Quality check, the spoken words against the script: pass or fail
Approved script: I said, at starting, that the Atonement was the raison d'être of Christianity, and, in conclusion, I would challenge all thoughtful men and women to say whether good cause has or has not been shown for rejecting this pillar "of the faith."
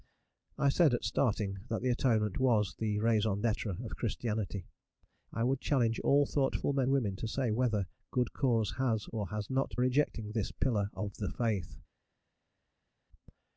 fail